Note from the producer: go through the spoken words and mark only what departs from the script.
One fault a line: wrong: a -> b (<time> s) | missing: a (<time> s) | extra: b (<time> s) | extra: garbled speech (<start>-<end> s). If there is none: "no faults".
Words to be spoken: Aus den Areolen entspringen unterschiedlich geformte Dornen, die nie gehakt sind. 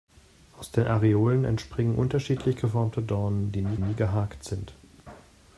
extra: nie (3.8 s)